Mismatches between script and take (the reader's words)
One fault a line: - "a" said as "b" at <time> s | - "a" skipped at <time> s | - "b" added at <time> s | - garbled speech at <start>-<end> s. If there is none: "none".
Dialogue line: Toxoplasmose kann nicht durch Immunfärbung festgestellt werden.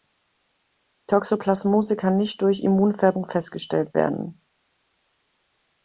none